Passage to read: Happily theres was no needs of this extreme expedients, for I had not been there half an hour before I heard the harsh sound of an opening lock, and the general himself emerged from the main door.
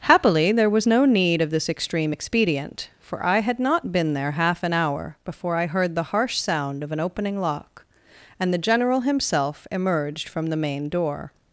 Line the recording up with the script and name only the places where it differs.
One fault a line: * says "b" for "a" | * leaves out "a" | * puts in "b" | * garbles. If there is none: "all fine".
* says "there" for "theres"
* says "need" for "needs"
* says "expedient" for "expedients"